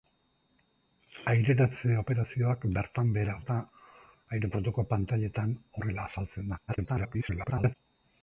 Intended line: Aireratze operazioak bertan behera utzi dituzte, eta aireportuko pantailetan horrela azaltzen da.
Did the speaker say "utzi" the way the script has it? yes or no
no